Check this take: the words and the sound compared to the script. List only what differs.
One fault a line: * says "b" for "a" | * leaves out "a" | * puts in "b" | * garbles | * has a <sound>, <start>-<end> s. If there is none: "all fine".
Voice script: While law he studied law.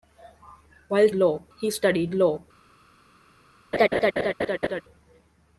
* has a laugh, 3.7-4.8 s